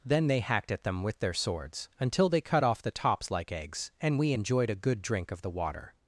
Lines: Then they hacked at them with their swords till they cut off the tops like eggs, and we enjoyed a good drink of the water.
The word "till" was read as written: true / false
false